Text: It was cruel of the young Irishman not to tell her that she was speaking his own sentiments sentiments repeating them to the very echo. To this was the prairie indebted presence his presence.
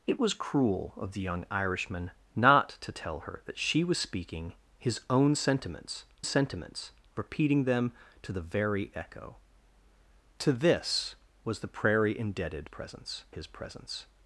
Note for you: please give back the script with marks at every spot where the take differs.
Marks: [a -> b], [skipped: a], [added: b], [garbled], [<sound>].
It was cruel of the young Irishman not to tell her that she was speaking his own sentiments sentiments repeating them to the very echo. To this was the prairie indebted presence his presence.